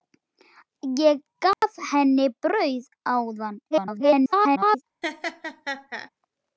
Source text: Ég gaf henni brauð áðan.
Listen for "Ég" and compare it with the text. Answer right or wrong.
right